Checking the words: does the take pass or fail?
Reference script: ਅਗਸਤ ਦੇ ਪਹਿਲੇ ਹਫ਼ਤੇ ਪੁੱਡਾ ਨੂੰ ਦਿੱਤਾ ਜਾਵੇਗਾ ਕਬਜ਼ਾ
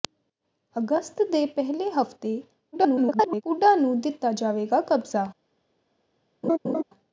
fail